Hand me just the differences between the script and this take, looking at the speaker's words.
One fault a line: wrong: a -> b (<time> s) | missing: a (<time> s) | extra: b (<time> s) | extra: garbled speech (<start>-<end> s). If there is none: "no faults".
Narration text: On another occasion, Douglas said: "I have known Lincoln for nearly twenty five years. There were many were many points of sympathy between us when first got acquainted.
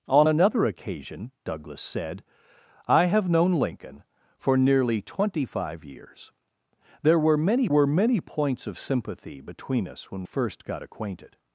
no faults